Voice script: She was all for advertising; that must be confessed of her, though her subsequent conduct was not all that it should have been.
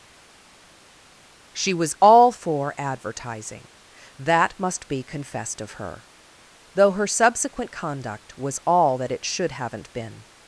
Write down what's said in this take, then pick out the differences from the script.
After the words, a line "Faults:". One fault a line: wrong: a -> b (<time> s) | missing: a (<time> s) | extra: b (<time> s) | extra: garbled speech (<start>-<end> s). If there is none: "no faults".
She was all for advertising; that must be confessed of her, though her subsequent conduct was all that it should haven't been.
Faults:
missing: not (8.6 s)
wrong: have -> haven't (9.5 s)